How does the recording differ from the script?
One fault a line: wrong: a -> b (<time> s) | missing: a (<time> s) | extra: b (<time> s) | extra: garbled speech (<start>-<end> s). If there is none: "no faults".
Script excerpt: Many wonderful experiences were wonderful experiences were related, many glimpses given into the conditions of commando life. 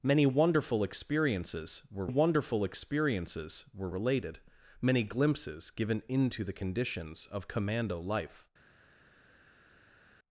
no faults